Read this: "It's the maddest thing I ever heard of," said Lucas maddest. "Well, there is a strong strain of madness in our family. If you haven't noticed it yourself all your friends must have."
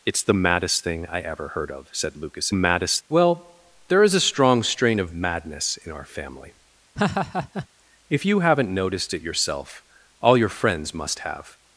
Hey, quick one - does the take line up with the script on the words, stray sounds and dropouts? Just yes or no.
no